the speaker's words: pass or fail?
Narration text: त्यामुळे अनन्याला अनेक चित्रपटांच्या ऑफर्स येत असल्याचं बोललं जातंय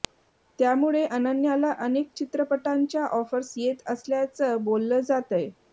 pass